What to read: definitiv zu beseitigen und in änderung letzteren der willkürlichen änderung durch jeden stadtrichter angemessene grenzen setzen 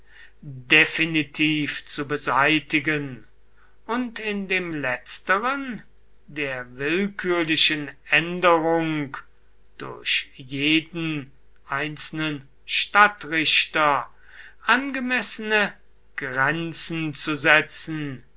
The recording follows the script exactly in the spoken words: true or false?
false